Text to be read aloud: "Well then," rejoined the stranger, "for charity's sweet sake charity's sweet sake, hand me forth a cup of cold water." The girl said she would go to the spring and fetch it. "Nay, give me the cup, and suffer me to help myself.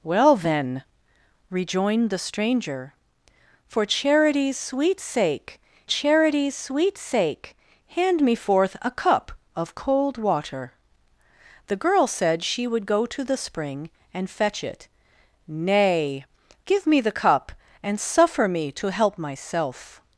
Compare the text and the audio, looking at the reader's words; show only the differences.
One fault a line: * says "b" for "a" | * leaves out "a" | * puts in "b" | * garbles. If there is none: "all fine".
all fine